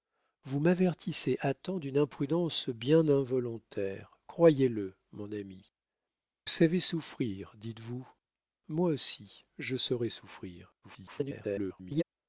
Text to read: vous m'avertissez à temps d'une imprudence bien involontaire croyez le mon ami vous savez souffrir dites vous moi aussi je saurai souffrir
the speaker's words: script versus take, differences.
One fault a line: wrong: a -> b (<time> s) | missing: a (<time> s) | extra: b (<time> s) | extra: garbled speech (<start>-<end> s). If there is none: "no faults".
missing: vous (5.7 s)
extra: garbled speech (10.8-12.0 s)